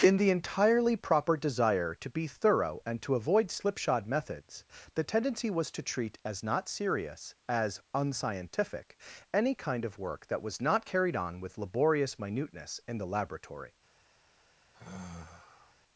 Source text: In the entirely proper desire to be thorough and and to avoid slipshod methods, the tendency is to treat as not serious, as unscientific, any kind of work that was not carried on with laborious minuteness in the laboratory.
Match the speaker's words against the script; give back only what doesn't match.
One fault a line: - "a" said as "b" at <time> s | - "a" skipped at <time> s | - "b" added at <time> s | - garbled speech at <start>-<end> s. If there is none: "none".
- "and" skipped at 3.0 s
- "is" said as "was" at 5.5 s